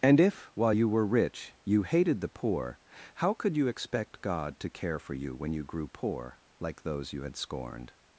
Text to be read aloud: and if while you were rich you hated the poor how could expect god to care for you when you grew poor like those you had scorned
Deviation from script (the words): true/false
true